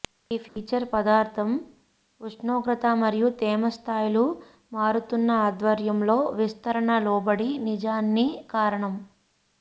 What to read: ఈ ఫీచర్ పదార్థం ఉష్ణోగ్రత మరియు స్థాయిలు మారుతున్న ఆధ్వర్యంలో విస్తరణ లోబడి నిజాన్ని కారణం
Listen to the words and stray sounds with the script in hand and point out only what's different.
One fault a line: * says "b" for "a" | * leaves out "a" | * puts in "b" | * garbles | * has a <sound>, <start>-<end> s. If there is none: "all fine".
* has a dropout, 0.5-0.6 s
* puts in "తేమ"